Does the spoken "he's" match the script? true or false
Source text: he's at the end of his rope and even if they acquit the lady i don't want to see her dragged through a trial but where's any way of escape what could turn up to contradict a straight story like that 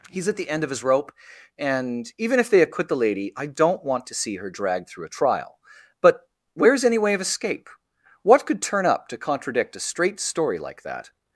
true